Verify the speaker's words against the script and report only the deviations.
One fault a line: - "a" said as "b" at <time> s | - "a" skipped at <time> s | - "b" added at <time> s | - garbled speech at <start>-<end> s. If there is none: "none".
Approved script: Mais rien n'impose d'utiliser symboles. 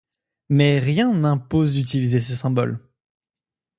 - "ces" added at 2.2 s